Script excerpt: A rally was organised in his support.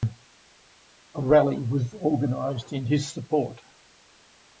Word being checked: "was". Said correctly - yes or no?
yes